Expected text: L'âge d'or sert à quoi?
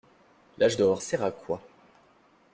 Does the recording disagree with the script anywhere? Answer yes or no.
no